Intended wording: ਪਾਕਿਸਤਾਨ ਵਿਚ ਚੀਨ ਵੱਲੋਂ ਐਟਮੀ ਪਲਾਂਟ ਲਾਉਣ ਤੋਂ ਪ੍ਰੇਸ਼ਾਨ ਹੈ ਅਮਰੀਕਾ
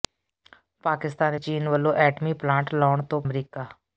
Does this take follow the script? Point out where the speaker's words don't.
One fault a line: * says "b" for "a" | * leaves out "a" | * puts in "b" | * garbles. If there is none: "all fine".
* leaves out "ਵਿਚ"
* leaves out "ਪ੍ਰੇਸ਼ਾਨ ਹੈ"